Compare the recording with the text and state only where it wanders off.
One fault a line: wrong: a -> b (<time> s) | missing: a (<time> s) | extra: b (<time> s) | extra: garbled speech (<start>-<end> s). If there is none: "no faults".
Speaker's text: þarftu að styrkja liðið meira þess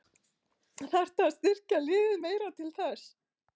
extra: til (2.6 s)